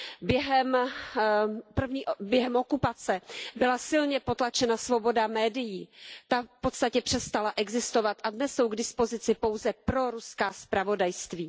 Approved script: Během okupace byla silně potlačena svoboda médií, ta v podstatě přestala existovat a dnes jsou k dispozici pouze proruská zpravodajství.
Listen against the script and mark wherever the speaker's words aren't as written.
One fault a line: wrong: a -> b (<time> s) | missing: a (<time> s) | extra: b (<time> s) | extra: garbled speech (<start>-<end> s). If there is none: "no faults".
no faults